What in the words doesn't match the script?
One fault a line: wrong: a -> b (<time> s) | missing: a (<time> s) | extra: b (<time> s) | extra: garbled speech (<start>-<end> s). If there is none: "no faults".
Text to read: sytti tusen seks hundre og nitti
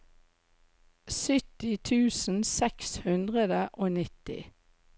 no faults